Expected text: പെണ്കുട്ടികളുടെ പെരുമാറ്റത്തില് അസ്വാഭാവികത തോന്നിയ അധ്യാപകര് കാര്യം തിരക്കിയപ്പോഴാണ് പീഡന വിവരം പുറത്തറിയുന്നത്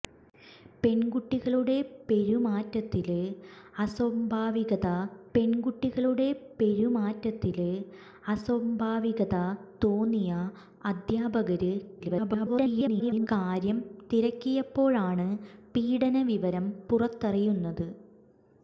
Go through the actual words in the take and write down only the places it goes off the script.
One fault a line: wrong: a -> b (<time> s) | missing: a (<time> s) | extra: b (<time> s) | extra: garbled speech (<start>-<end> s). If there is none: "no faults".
extra: പെണ്കുട്ടികളുടെ പെരുമാറ്റത്തില് അസ്വാഭാവികത (5.3 s)
extra: garbled speech (12.0-13.3 s)